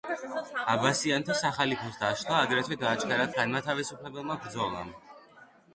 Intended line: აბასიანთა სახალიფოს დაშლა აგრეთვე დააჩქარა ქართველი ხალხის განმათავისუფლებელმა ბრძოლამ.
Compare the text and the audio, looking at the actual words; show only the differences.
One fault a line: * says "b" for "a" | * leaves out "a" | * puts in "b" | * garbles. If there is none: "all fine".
* leaves out "ქართველი ხალხის"